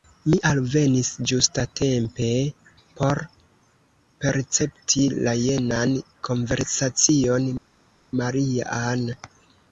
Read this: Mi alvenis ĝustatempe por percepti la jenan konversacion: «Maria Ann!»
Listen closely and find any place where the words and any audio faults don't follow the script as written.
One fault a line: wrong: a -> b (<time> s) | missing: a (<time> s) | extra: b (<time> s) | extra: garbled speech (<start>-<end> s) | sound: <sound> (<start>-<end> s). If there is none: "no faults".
no faults